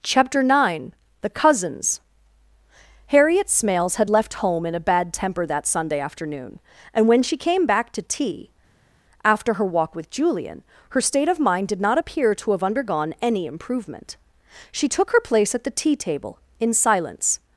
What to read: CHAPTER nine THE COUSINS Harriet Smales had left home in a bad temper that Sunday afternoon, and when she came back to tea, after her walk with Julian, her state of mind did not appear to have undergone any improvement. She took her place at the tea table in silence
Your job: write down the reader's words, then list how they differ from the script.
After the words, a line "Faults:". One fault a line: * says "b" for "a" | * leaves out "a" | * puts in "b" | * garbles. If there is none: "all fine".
CHAPTER nine THE COUSINS Harriet Smales had left home in a bad temper that Sunday afternoon, and when she came back to tea, after her walk with Julian, her state of mind did not appear to have undergone any improvement. She took her place at the tea table in silence
Faults:
all fine